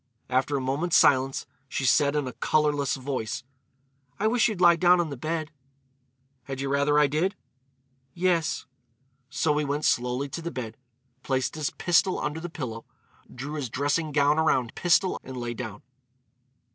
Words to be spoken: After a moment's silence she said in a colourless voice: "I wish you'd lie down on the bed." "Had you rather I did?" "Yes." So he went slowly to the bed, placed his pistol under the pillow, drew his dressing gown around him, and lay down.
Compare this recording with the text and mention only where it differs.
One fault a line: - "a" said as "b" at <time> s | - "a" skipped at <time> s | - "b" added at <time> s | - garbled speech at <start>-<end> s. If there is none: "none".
- "him" said as "pistol" at 14.7 s